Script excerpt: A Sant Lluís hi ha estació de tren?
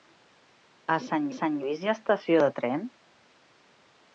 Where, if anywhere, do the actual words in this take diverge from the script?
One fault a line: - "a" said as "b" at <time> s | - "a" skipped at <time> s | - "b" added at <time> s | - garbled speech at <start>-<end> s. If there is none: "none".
- "Sant" added at 1.4 s